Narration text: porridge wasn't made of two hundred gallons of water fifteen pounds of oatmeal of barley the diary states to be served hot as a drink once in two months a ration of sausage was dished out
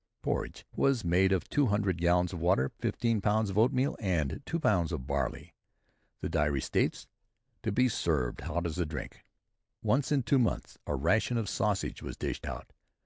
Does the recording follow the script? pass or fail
fail